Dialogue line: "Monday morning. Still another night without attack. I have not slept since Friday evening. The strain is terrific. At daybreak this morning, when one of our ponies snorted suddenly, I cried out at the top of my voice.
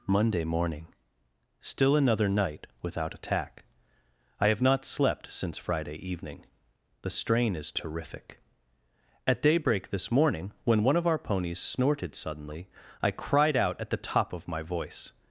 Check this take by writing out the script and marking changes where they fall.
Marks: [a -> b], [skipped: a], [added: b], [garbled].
"Monday morning. Still another night without attack. I have not slept since Friday evening. The strain is terrific. At daybreak this morning, when one of our ponies snorted suddenly, I cried out at the top of my voice.